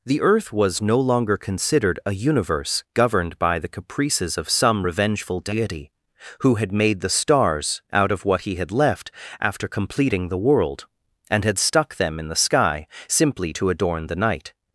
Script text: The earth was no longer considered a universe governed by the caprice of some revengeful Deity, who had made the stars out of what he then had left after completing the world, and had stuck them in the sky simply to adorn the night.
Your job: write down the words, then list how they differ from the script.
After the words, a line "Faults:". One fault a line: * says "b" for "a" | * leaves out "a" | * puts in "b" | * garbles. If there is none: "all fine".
The earth was no longer considered a universe governed by the caprices of some revengeful Deity, who had made the stars out of what he had left after completing the world, and had stuck them in the sky simply to adorn the night.
Faults:
* says "caprices" for "caprice"
* leaves out "then"